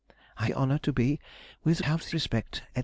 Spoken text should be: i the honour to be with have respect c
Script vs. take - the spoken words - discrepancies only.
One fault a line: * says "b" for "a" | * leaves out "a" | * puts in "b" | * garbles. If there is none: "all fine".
all fine